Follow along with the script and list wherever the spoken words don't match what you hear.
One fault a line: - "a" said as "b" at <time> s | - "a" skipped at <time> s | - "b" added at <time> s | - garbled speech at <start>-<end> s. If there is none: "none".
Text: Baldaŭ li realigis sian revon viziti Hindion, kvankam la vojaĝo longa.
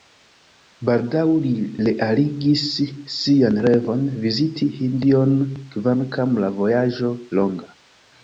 none